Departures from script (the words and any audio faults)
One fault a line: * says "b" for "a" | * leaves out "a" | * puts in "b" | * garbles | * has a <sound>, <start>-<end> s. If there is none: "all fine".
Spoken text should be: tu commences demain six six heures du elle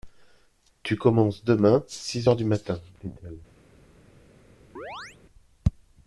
* leaves out "six"
* puts in "matin dit"
* has a chirp, 4.8-5.2 s